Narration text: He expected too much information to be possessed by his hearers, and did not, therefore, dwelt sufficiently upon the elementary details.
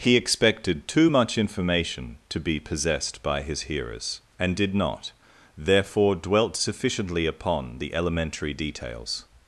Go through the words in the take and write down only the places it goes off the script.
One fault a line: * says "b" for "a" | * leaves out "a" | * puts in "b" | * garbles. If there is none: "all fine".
all fine